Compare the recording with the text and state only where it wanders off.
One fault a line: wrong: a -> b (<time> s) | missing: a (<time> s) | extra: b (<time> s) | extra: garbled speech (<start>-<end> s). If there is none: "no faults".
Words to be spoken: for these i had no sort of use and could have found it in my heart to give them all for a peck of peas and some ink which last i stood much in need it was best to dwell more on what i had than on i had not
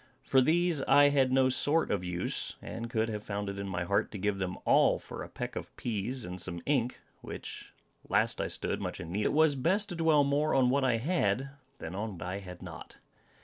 no faults